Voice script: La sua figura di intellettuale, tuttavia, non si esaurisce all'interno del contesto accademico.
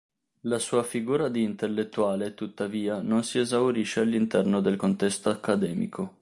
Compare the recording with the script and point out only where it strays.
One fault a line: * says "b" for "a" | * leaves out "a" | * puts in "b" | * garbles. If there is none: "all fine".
all fine